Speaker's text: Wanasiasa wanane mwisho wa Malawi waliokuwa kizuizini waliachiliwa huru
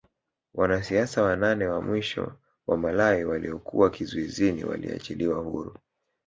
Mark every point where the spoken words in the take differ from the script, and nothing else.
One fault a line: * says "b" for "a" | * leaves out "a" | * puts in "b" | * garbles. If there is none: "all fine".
* puts in "wa"